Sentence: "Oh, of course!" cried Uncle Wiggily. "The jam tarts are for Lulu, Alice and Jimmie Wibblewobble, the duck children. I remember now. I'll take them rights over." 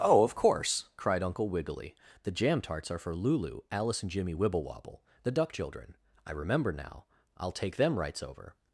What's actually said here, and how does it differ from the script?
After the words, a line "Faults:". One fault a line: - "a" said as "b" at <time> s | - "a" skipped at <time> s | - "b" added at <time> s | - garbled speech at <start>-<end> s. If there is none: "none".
"Oh, of course!" cried Uncle Wiggily. "The jam tarts are for Lulu, Alice and Jimmie Wibblewobble, the duck children. I remember now. I'll take them rights over."
Faults:
none